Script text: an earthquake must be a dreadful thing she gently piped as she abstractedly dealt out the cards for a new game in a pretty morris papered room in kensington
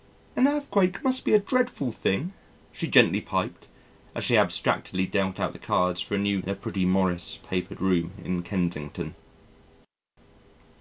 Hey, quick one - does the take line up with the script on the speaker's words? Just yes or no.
no